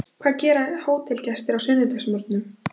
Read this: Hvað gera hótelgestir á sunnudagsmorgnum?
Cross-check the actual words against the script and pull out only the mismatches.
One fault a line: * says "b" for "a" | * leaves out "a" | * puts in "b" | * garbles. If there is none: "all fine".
all fine